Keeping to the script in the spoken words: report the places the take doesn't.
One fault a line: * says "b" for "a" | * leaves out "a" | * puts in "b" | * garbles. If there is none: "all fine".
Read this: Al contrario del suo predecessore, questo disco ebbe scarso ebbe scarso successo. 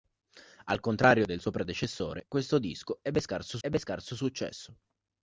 all fine